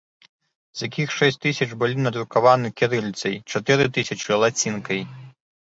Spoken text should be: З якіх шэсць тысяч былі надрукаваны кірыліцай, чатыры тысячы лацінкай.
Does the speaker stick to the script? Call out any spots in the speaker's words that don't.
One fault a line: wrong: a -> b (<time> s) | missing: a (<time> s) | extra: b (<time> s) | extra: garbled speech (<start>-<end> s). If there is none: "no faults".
no faults